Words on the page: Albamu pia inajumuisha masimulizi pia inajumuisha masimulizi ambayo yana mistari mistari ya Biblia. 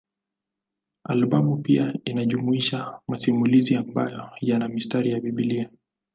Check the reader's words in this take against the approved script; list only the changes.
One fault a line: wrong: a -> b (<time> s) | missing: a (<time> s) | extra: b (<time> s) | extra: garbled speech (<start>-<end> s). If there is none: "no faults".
missing: pia inajumuisha masimulizi (3.8 s)
missing: mistari (5.1 s)